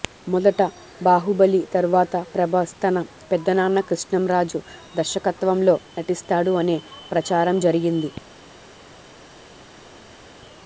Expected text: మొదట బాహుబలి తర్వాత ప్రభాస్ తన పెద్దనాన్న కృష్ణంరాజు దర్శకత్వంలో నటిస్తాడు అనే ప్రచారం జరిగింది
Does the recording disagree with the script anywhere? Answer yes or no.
no